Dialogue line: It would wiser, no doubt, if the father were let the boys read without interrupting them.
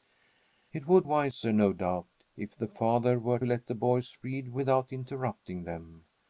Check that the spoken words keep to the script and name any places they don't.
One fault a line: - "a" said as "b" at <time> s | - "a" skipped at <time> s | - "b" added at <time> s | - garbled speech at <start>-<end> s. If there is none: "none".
none